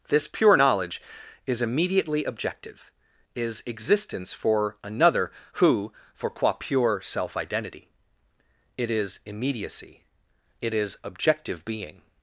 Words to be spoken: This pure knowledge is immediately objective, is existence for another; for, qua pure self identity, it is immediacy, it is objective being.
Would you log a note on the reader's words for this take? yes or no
yes